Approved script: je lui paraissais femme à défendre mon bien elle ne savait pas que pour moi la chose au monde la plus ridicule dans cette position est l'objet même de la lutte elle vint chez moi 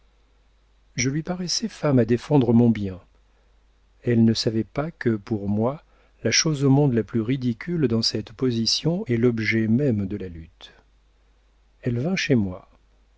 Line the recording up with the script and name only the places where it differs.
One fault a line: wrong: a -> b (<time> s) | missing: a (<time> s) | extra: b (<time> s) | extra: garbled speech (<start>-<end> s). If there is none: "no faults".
no faults